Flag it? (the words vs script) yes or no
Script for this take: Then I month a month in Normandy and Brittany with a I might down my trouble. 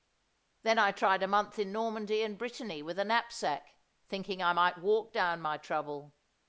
yes